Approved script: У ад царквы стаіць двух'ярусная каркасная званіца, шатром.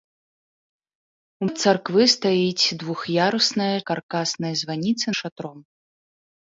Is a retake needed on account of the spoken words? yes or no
no